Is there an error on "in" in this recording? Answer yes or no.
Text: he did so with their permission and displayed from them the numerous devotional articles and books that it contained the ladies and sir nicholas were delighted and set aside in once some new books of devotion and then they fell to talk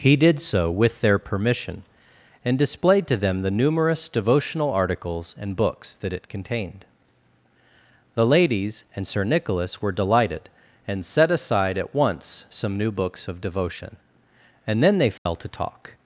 yes